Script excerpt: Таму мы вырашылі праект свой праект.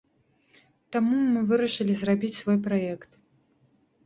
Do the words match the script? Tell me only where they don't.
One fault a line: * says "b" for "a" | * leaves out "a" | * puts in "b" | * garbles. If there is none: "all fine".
* says "зрабіць" for "праект"